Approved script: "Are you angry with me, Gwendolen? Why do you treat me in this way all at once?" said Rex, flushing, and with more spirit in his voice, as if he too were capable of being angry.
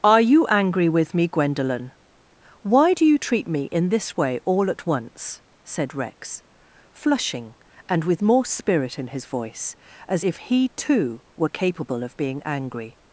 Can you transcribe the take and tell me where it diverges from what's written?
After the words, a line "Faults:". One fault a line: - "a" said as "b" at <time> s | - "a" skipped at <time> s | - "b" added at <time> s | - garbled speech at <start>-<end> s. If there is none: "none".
"Are you angry with me, Gwendolen? Why do you treat me in this way all at once?" said Rex, flushing, and with more spirit in his voice, as if he too were capable of being angry.
Faults:
none